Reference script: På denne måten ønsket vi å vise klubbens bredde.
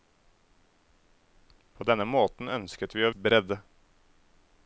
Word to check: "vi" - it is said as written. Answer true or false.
true